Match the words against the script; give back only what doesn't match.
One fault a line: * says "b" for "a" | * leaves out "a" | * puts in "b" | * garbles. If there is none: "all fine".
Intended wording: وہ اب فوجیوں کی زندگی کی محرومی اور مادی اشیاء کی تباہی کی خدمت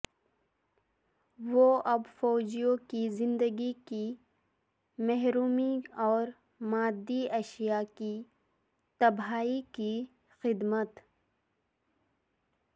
all fine